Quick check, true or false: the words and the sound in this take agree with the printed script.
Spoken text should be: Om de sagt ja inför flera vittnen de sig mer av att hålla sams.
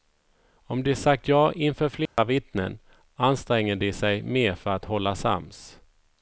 false